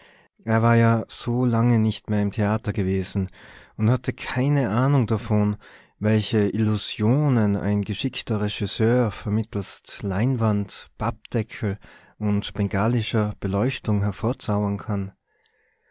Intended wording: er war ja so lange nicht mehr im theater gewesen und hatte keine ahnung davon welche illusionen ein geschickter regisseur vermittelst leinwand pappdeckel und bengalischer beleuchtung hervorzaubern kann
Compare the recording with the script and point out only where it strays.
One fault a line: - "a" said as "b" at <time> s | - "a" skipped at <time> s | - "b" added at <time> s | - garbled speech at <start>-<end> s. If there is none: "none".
none